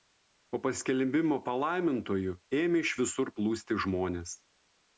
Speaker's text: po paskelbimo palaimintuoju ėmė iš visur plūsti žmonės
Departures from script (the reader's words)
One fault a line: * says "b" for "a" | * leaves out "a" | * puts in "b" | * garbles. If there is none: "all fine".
all fine